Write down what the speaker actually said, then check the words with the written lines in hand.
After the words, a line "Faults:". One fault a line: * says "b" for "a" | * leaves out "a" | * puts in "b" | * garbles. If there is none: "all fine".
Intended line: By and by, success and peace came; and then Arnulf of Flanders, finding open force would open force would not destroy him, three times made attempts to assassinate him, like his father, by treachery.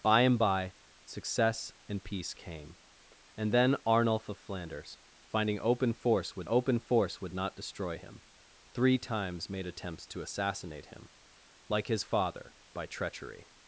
By and by, success and peace came; and then Arnulf of Flanders, finding open force would open force would not destroy him, three times made attempts to assassinate him, like his father, by treachery.
Faults:
all fine